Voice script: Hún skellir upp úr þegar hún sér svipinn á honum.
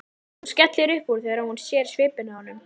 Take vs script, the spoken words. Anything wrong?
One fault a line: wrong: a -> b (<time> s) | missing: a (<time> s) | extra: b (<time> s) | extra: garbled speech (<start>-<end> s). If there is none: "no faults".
no faults